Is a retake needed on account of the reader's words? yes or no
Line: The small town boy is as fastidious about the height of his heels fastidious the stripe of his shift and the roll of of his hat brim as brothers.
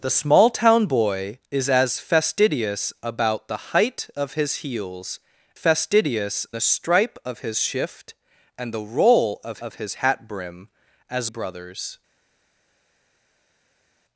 no